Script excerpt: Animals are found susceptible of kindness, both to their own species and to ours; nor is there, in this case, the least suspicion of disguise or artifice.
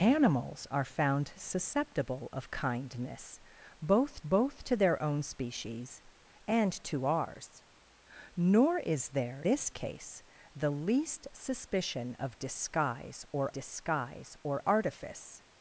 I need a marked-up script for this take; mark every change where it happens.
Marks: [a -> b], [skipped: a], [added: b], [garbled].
Animals are found susceptible of kindness, both [added: both] to their own species and to ours; nor is there, [skipped: in] this case, the least suspicion of disguise or [added: disguise or] artifice.